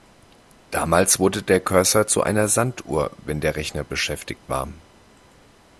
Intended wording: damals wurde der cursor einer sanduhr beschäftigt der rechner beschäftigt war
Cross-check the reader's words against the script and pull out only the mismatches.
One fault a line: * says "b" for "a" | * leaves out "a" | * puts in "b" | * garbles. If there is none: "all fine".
* puts in "zu"
* says "wenn" for "beschäftigt"